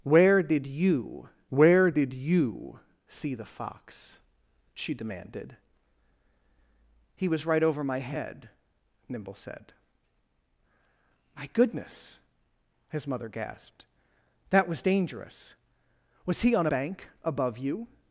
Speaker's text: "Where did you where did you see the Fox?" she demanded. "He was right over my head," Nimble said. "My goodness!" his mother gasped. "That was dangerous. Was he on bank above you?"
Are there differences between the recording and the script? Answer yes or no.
no